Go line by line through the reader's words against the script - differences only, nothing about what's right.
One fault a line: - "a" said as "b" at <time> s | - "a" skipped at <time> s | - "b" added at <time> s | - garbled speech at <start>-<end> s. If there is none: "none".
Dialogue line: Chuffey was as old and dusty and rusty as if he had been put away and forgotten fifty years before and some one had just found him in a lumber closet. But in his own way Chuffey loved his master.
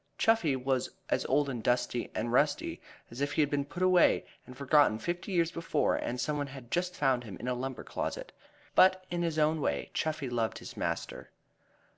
none